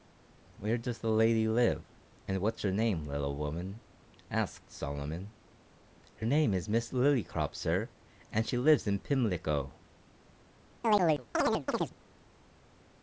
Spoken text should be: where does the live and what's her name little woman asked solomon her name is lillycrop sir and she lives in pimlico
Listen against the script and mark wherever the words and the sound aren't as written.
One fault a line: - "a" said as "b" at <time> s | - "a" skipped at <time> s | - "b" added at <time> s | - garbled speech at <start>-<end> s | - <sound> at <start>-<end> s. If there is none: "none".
- "lady" added at 1.1 s
- "miss" added at 6.7 s
- chirp at 10.8-11.9 s